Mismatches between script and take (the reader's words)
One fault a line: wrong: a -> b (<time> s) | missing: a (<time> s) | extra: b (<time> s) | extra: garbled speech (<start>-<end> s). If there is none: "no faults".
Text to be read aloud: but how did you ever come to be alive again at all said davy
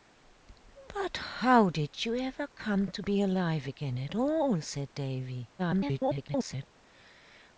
extra: garbled speech (5.6-6.7 s)